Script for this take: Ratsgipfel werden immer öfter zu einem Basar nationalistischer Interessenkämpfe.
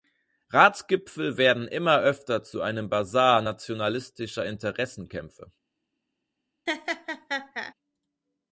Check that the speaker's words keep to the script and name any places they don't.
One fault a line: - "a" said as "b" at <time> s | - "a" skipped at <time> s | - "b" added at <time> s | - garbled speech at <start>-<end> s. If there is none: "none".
none